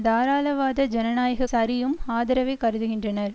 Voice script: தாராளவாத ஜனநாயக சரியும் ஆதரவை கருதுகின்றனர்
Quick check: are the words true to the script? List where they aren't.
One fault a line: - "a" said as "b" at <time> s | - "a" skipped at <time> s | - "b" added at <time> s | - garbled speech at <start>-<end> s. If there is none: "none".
none